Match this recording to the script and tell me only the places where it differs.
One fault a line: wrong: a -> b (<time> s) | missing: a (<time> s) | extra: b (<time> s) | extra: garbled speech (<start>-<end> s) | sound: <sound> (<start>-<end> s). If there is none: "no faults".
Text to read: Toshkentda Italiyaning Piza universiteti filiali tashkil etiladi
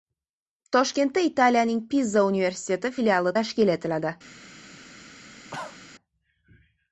sound: cough (5.5-5.8 s)